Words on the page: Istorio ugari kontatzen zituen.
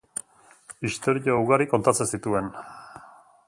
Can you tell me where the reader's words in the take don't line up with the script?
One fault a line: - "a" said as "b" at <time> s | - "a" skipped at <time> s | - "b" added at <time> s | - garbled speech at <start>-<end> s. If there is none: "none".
none